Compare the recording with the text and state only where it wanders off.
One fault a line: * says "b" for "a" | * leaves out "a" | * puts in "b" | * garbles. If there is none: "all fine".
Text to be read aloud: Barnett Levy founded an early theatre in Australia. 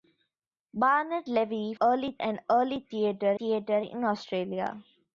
* says "early" for "founded"
* puts in "theatre"